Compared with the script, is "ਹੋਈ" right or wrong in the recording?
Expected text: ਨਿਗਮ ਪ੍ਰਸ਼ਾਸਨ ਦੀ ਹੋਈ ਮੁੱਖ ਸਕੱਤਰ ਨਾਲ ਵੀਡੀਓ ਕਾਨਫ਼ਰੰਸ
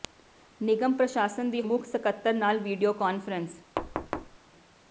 wrong